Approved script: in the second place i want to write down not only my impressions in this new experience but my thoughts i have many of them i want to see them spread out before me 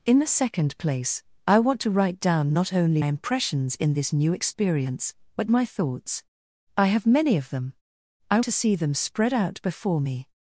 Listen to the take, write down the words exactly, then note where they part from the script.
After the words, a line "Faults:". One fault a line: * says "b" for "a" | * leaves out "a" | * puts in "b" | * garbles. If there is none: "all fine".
in the second place i want to write down not only impressions in this new experience but my thoughts i have many of them i to see them spread out before me
Faults:
* leaves out "my"
* leaves out "want"